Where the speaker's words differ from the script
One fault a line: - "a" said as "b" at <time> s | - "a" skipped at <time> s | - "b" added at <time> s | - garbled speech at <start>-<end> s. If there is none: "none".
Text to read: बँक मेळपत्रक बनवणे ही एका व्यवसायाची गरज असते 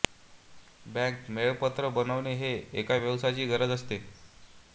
none